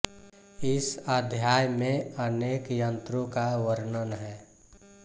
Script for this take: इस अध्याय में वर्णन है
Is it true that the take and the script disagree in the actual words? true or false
true